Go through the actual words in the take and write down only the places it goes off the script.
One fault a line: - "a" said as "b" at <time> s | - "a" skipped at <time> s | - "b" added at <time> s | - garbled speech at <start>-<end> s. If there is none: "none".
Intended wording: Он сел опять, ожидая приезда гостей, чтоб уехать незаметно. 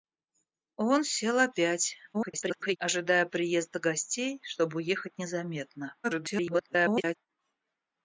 - garbled speech at 2.1-2.8 s
- garbled speech at 6.0-7.2 s